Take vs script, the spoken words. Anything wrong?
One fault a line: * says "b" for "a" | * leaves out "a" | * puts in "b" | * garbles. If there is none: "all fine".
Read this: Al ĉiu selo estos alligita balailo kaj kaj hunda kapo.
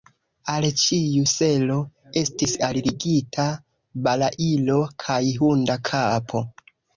* says "estis" for "estos"
* leaves out "kaj"